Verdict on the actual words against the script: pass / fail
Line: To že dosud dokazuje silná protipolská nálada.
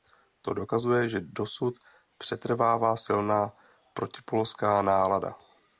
fail